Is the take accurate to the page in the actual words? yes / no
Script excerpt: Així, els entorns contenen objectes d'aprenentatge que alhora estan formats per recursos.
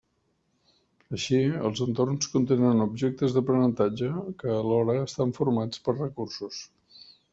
yes